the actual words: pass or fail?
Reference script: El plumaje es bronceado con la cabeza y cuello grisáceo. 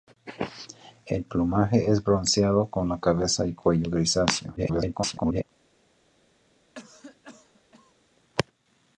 fail